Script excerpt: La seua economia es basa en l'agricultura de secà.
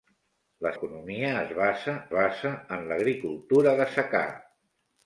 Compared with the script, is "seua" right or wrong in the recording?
wrong